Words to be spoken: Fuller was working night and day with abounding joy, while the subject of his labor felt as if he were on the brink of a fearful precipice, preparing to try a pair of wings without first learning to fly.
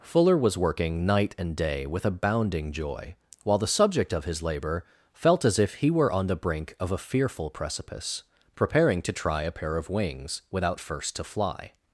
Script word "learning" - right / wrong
wrong